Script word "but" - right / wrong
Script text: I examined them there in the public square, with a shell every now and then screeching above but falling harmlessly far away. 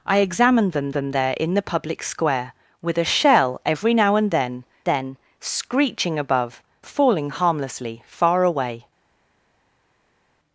wrong